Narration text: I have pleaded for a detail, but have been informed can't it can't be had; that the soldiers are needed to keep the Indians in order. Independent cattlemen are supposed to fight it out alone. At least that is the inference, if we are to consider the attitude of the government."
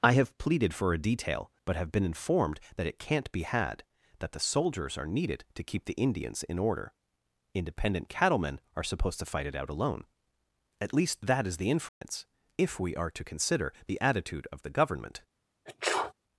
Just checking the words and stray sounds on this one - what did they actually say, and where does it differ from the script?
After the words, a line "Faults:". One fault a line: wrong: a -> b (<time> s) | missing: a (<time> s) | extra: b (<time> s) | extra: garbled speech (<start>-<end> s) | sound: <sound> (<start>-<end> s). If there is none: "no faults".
I have pleaded for a detail, but have been informed that it can't be had; that the soldiers are needed to keep the Indians in order. Independent cattlemen are supposed to fight it out alone. At least that is the inference, if we are to consider the attitude of the government."
Faults:
wrong: can't -> that (2.8 s)
sound: dropout (11.9-12.0 s)
sound: sneeze (15.7-16.1 s)